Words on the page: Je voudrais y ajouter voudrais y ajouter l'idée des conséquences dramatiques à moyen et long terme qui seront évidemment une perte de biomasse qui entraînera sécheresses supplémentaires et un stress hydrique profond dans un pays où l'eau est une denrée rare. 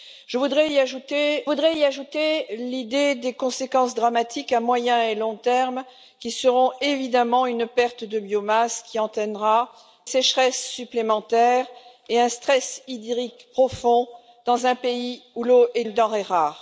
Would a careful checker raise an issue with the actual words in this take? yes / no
no